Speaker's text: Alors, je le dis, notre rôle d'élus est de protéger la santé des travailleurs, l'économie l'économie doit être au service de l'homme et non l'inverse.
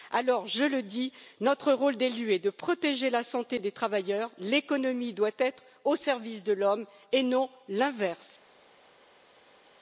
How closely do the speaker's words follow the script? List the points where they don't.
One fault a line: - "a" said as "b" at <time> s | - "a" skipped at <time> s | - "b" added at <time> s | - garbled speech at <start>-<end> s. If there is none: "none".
- "l'économie" skipped at 5.1 s